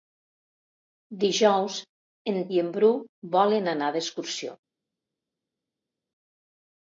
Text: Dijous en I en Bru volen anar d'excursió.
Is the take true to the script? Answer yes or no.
yes